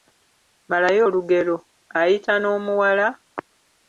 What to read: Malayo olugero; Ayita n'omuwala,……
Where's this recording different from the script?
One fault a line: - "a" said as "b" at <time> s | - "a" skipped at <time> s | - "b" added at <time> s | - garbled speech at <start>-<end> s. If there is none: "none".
none